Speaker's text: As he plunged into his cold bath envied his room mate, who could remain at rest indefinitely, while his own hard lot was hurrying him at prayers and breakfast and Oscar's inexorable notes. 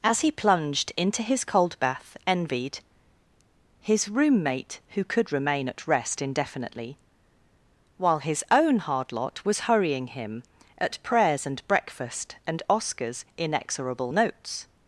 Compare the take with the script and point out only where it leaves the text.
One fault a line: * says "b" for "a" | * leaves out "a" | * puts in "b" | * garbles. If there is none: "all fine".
all fine